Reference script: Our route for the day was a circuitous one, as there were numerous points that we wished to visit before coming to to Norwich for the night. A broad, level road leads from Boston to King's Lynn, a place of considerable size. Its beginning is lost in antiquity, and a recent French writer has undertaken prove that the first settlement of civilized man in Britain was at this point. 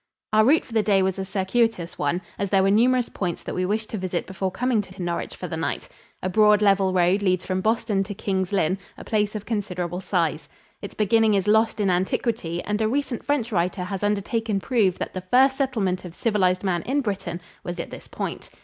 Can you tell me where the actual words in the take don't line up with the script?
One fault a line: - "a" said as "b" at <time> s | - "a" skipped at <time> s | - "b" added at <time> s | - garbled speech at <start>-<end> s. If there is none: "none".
none